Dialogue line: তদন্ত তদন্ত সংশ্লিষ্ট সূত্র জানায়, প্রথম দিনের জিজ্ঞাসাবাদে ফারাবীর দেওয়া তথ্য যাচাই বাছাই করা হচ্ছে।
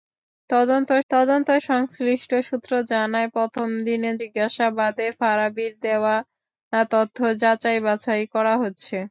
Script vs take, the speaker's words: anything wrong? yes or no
no